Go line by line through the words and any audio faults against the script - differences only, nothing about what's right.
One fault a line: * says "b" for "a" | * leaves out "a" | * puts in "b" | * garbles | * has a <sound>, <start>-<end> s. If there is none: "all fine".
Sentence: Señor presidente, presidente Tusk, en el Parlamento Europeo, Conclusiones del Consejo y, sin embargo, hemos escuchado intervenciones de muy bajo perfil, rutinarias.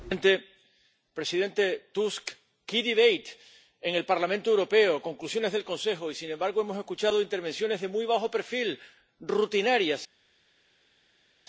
all fine